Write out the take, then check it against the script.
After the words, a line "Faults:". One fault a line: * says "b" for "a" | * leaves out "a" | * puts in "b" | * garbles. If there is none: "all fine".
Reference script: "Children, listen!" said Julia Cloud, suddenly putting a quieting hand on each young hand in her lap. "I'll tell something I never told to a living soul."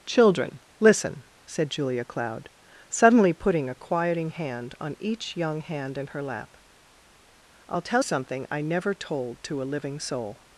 "Children, listen!" said Julia Cloud, suddenly putting a quieting hand on each young hand in her lap. "I'll tell something I never told to a living soul."
Faults:
all fine